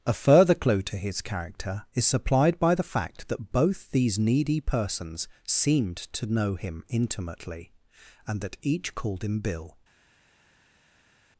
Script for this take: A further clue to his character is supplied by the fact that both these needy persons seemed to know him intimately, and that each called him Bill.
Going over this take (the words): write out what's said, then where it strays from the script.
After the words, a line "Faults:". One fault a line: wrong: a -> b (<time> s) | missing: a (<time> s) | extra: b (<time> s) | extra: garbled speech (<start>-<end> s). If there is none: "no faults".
A further clue to his character is supplied by the fact that both these needy persons seemed to know him intimately, and that each called him Bill.
Faults:
no faults